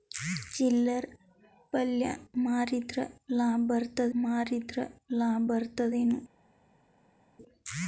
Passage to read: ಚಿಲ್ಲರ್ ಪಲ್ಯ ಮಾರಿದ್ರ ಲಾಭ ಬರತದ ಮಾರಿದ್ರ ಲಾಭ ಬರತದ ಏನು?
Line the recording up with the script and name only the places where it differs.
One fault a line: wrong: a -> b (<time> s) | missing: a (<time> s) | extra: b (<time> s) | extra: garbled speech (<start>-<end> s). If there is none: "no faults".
no faults